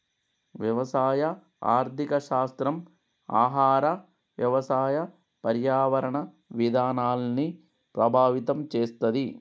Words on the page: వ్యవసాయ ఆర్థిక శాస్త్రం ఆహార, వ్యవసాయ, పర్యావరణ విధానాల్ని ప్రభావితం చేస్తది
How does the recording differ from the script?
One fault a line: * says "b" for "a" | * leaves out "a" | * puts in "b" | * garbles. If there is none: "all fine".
all fine